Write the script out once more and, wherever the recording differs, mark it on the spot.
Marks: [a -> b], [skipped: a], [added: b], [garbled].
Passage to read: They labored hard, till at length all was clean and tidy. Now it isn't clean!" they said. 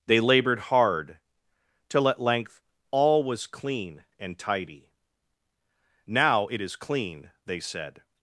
They labored hard, till at length all was clean and tidy. Now it [isn't -> is] clean!" they said.